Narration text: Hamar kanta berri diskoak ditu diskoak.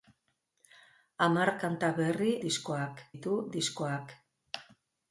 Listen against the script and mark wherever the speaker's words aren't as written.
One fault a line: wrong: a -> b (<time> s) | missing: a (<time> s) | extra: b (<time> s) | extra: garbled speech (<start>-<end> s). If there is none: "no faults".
no faults